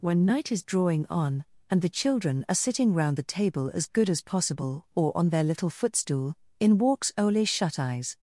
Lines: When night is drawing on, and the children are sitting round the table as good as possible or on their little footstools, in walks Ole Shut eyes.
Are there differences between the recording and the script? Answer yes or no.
yes